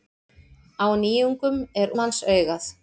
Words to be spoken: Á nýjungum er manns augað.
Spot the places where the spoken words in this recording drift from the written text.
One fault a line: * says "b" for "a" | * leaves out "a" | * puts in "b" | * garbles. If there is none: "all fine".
all fine